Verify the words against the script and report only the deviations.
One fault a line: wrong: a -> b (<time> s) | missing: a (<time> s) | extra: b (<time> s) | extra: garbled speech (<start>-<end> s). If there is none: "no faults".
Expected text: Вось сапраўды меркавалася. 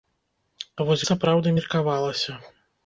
no faults